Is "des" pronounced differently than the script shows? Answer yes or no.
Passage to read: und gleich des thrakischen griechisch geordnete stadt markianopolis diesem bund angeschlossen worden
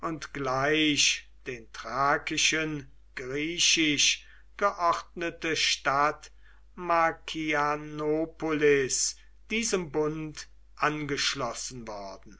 yes